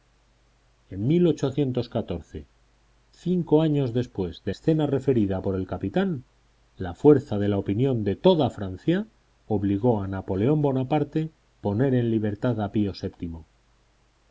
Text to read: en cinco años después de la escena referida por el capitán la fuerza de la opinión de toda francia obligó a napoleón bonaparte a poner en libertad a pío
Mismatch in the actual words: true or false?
true